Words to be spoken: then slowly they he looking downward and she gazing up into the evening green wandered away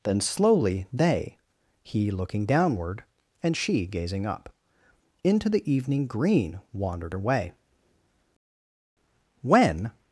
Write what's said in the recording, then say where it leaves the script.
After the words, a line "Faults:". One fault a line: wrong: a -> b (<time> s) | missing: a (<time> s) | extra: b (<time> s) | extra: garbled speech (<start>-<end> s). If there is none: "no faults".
then slowly they he looking downward and she gazing up into the evening green wandered away when
Faults:
extra: when (9.4 s)